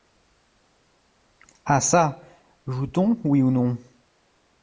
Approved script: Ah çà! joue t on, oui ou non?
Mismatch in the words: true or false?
false